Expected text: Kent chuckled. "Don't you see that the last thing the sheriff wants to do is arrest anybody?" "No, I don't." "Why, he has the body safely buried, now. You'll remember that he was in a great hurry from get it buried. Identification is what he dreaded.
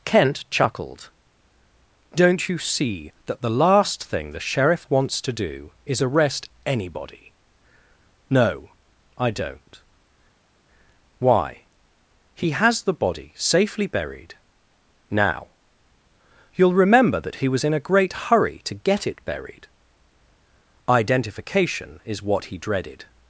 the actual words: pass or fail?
fail